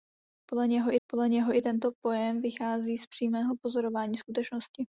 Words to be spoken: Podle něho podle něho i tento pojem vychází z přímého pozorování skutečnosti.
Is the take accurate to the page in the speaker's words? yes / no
yes